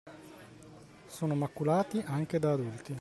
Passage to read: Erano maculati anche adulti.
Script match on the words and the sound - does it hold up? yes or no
no